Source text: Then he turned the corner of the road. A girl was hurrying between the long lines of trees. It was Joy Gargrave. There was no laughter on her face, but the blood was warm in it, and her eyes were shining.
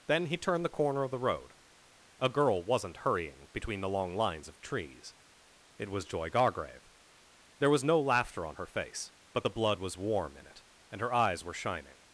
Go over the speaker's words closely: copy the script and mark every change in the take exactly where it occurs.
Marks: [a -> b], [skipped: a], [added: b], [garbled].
Then he turned the corner of the road. A girl [was -> wasn't] hurrying between the long lines of trees. It was Joy Gargrave. There was no laughter on her face, but the blood was warm in it, and her eyes were shining.